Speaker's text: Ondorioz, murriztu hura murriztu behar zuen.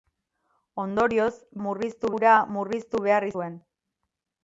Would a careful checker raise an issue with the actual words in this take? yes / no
no